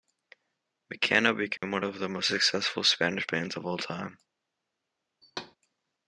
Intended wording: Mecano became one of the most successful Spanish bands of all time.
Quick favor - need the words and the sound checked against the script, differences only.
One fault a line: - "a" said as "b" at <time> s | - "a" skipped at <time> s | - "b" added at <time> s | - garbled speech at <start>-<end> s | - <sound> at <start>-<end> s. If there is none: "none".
- dropout at 1.6-1.6 s
- thud at 5.2-5.6 s